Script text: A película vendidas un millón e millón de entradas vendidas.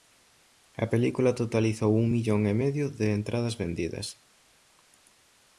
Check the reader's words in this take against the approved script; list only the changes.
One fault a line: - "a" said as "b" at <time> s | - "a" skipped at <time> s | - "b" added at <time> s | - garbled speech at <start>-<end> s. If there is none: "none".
- "vendidas" said as "totalizou" at 1.4 s
- "millón" said as "medio" at 2.6 s